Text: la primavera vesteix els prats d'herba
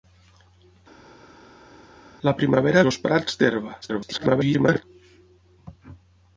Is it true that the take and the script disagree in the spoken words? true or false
true